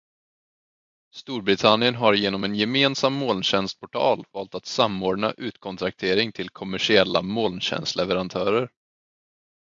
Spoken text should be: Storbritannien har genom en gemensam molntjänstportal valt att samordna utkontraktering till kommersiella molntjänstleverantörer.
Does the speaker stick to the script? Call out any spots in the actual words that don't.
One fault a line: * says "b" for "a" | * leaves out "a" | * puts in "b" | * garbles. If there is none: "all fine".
all fine